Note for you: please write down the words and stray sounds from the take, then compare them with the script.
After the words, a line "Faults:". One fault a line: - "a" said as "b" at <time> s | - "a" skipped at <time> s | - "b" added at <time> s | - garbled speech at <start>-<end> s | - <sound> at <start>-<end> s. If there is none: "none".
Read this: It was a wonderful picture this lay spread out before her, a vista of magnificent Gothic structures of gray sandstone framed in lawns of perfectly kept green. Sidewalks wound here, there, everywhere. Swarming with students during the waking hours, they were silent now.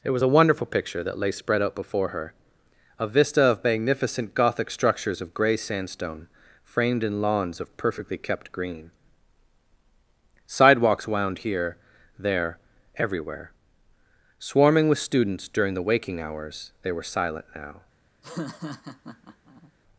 It was a wonderful picture that lay spread out before her, a vista of magnificent Gothic structures of gray sandstone framed in lawns of perfectly kept green. Sidewalks wound here, there, everywhere. Swarming with students during the waking hours, they were silent now.
Faults:
- "this" said as "that" at 1.0 s
- laugh at 18.2-19.7 s